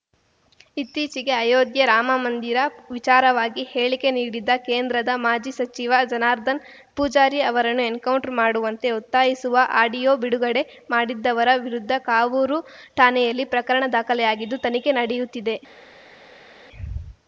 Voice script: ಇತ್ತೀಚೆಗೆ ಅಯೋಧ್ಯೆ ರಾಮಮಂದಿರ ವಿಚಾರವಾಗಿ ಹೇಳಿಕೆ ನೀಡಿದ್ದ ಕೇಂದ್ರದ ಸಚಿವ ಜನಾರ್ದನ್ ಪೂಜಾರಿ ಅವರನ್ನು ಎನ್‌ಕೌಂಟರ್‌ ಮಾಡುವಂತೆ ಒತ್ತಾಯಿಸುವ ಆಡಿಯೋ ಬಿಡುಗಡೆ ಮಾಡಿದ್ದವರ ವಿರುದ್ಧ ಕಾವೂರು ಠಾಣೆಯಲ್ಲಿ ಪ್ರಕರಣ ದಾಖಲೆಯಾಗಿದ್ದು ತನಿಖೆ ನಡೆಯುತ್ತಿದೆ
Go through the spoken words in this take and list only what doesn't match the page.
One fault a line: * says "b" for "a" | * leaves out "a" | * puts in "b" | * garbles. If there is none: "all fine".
* puts in "ಮಾಜಿ"